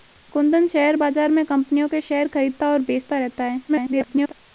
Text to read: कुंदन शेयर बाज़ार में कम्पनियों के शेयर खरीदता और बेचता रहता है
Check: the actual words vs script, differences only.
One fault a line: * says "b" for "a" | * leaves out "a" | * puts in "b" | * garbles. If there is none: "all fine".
* garbles